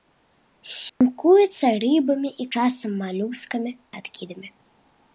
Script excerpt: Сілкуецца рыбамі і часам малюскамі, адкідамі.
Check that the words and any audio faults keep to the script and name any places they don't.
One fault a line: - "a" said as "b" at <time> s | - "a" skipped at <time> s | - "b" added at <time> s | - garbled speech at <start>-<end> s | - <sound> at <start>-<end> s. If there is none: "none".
- dropout at 0.9-1.0 s